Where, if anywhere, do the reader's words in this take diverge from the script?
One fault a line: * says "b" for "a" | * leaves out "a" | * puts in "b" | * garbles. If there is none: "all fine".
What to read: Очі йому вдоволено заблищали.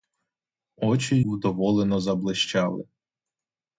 * leaves out "йому"